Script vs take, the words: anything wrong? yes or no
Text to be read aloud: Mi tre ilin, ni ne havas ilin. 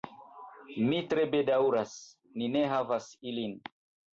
yes